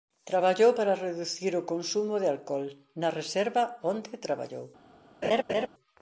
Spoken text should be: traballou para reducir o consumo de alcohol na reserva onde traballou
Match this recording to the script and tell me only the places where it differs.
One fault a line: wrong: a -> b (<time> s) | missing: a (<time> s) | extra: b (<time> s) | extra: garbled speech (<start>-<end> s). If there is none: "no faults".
no faults